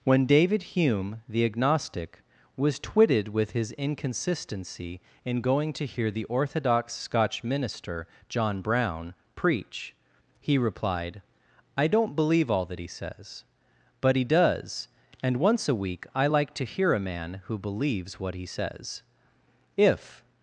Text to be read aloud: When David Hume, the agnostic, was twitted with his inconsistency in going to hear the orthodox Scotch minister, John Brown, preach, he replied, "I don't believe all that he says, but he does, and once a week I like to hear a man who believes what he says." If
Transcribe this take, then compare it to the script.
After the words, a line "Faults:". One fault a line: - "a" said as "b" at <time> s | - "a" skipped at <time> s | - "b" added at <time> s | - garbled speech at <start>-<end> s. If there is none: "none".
When David Hume, the agnostic, was twitted with his inconsistency in going to hear the orthodox Scotch minister, John Brown, preach, he replied, "I don't believe all that he says, but he does, and once a week I like to hear a man who believes what he says." If
Faults:
none